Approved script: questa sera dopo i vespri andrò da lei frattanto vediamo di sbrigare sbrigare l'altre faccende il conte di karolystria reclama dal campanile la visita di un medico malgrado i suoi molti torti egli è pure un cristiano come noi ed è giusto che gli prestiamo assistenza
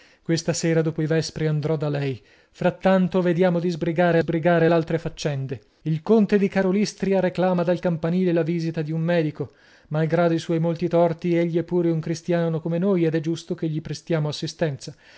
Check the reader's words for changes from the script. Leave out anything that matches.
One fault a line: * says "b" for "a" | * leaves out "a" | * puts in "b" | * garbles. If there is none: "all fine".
all fine